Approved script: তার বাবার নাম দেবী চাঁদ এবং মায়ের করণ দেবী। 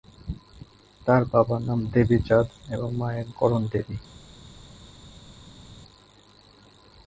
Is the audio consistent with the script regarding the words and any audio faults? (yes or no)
yes